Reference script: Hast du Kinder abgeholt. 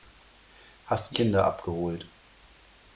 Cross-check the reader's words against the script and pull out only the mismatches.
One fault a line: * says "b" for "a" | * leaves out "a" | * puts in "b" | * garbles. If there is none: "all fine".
all fine